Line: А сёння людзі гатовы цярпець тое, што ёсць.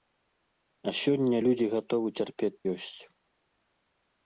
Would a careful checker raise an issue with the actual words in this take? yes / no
yes